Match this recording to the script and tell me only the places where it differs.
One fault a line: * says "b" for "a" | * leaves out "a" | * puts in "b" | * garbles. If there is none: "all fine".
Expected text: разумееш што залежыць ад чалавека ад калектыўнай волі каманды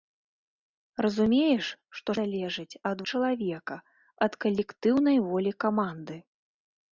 all fine